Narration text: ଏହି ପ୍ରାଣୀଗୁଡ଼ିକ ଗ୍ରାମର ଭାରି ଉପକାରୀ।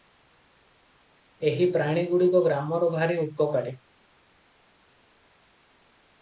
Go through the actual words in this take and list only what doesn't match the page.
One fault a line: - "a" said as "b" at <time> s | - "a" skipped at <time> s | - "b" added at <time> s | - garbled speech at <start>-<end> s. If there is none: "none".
none